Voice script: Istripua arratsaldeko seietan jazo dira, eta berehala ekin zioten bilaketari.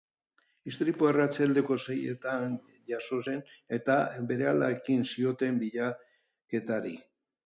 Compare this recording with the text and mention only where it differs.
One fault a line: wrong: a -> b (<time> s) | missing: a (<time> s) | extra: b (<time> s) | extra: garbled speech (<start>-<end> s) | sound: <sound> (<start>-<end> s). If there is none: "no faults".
wrong: dira -> zen (3.3 s)